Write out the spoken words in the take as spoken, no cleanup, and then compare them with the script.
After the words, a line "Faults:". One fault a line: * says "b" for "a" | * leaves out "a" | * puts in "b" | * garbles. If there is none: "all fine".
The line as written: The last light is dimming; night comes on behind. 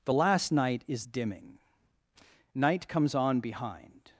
The last night is dimming; night comes on behind.
Faults:
* says "night" for "light"